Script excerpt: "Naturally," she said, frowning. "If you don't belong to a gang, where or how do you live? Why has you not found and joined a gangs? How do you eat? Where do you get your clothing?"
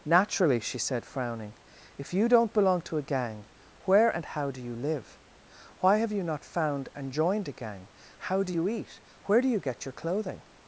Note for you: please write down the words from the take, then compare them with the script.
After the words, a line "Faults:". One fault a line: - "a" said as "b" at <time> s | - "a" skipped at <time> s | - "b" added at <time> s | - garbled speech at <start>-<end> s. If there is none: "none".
"Naturally," she said, frowning. "If you don't belong to a gang, where and how do you live? Why have you not found and joined a gang? How do you eat? Where do you get your clothing?"
Faults:
- "or" said as "and" at 4.1 s
- "has" said as "have" at 6.0 s
- "gangs" said as "gang" at 7.5 s